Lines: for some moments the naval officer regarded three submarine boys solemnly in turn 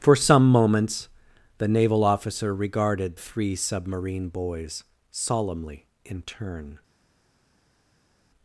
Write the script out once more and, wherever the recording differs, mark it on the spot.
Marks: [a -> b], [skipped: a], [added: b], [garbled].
for some moments the naval officer regarded three submarine boys solemnly in turn